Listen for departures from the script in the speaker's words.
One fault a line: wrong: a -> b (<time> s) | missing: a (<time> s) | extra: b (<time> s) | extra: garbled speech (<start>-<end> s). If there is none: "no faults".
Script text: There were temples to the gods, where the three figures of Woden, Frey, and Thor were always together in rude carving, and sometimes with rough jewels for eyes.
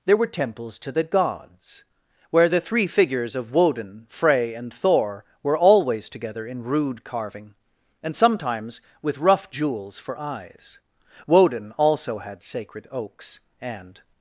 extra: Woden also had sacred oaks and (11.2 s)